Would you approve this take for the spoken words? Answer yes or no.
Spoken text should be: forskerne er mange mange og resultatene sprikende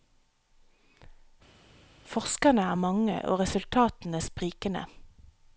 no